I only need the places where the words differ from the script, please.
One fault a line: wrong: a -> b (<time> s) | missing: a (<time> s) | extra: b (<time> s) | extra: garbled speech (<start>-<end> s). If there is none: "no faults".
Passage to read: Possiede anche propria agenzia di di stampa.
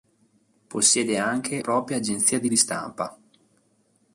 no faults